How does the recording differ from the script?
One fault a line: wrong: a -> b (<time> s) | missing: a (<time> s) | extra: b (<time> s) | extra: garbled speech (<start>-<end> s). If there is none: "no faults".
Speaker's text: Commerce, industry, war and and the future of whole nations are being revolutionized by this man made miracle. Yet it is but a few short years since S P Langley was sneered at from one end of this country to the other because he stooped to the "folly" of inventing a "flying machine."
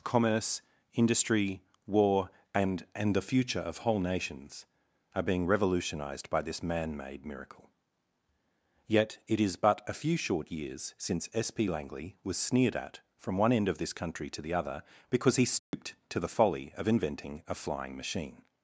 no faults